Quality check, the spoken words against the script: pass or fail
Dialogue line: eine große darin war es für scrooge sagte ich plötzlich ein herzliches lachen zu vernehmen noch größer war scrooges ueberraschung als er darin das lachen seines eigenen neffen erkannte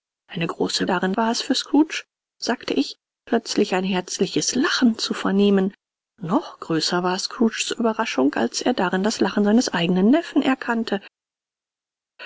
pass